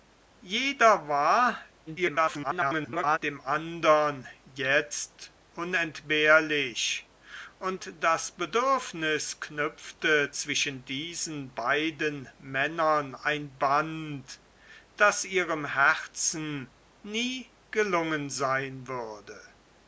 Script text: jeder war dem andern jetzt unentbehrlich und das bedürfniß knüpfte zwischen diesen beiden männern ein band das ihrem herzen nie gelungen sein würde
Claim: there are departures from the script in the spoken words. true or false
true